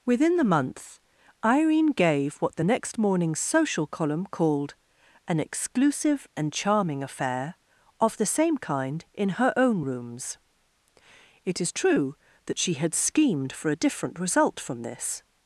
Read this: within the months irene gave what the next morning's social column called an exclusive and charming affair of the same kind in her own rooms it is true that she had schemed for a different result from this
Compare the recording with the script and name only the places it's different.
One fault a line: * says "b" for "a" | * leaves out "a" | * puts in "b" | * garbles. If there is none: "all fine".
* says "month" for "months"